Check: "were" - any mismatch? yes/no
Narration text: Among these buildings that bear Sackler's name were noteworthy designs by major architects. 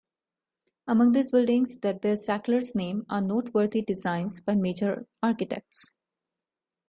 yes